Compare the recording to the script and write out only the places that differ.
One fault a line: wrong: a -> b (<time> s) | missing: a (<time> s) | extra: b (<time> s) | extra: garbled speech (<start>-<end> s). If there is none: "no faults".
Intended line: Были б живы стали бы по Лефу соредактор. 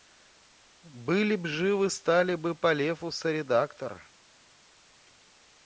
no faults